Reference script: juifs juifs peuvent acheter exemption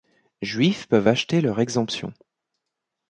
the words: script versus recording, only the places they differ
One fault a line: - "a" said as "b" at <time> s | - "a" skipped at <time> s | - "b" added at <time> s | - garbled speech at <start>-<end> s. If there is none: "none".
- "juifs" skipped at 0.9 s
- "leur" added at 1.4 s